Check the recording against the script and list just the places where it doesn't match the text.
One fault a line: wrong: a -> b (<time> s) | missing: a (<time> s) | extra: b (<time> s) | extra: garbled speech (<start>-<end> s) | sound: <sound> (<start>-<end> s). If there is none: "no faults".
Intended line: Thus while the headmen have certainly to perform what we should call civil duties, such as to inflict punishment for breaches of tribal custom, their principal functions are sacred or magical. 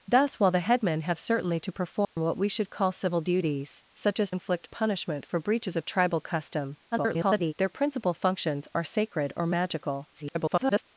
sound: dropout (2.0-2.2 s)
missing: to (4.3 s)
extra: garbled speech (6.9-7.5 s)
extra: garbled speech (10.1-10.8 s)